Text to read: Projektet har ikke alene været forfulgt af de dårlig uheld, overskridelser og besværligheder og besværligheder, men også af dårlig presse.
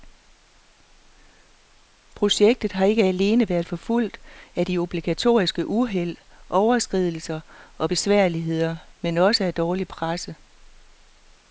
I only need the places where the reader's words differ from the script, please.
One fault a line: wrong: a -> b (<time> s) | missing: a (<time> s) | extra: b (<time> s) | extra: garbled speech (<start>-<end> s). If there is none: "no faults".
wrong: dårlig -> obligatoriske (4.8 s)
missing: og besværligheder (8.8 s)